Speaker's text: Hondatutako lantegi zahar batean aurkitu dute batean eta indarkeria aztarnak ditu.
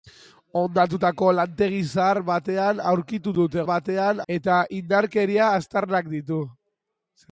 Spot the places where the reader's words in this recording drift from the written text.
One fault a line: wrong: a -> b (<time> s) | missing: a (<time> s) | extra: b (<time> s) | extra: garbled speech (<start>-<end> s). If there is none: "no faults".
no faults